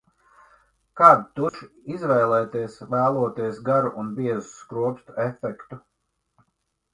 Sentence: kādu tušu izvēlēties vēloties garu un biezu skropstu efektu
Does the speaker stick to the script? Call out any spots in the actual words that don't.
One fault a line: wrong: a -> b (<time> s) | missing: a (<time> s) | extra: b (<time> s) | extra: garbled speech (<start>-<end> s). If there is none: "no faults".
no faults